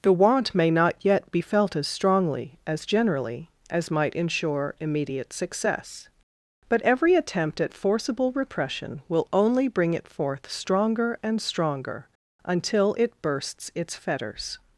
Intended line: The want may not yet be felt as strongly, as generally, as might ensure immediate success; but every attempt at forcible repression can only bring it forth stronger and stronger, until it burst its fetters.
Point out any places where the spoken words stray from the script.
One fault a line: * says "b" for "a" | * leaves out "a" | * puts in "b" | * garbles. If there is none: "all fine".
* says "will" for "can"
* says "bursts" for "burst"